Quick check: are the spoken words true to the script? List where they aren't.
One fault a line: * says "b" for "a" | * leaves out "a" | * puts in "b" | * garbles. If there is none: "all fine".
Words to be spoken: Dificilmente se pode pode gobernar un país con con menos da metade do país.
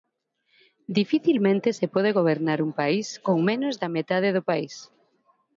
* leaves out "pode"
* leaves out "con"